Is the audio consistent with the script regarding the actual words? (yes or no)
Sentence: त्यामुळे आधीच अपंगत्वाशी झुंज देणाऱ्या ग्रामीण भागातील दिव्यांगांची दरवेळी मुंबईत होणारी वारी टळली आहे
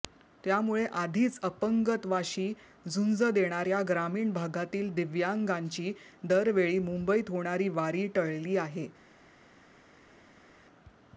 yes